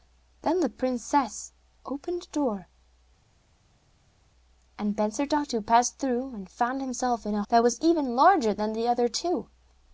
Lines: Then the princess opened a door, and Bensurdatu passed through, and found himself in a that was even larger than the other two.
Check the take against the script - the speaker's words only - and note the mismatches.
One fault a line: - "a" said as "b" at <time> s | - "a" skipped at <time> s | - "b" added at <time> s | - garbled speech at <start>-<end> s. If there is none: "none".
none